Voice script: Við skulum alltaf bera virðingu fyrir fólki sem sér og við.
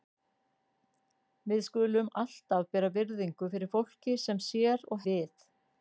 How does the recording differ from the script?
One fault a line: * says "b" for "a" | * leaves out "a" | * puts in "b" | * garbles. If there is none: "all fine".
all fine